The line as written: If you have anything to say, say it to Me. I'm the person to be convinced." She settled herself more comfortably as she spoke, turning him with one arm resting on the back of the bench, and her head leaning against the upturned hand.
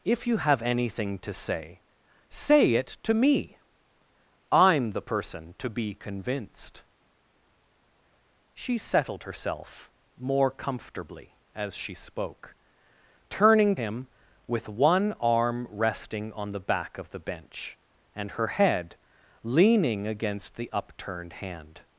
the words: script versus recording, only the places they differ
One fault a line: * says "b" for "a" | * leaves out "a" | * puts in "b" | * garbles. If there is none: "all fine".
all fine